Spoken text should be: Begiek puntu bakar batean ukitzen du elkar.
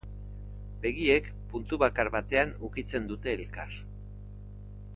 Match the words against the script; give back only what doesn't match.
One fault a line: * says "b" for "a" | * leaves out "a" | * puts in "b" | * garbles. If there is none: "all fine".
* says "dute" for "du"